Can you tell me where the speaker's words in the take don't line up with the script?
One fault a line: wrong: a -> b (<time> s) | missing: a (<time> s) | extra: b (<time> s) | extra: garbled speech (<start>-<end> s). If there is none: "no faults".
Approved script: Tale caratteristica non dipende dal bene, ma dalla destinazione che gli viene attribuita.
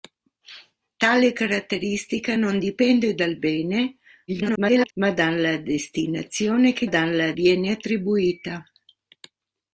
extra: garbled speech (4.3-4.9 s)
wrong: gli -> dalla (6.8 s)